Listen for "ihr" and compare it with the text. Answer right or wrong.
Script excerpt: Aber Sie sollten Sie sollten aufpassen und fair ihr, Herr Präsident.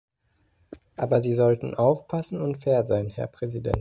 wrong